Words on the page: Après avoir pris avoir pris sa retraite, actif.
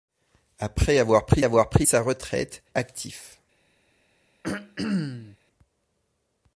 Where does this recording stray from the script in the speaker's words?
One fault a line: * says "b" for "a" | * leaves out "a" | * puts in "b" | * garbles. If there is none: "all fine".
all fine